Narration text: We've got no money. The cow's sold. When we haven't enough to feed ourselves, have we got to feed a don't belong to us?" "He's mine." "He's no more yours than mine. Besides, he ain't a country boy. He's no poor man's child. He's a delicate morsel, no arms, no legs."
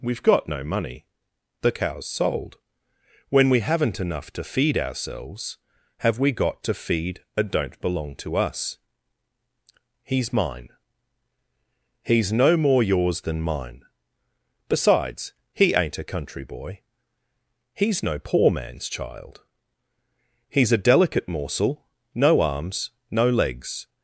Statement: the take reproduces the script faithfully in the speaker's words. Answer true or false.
true